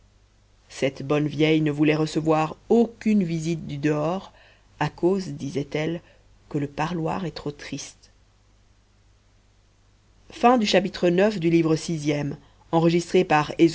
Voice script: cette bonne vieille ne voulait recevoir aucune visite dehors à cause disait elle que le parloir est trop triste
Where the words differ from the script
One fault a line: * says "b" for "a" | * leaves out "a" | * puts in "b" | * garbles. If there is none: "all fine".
* puts in "du"